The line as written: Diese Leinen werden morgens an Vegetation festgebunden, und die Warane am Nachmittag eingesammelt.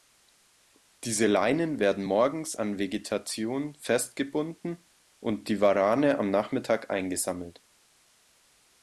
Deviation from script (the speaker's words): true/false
false